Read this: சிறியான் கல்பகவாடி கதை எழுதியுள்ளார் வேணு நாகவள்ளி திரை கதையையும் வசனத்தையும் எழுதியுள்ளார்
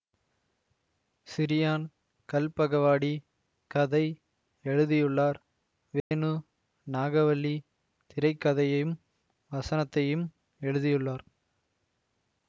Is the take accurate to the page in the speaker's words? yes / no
yes